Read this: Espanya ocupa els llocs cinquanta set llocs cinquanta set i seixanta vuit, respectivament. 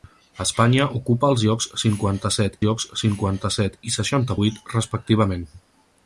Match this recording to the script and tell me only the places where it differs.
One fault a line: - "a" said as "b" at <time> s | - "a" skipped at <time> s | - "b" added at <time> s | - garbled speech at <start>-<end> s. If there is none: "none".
none